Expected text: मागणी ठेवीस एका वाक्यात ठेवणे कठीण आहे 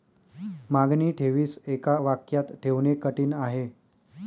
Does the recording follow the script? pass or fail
pass